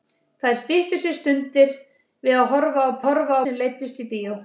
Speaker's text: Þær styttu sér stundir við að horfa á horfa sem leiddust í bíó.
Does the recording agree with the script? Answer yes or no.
yes